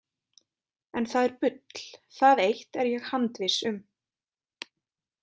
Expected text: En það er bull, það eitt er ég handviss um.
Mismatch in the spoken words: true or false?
false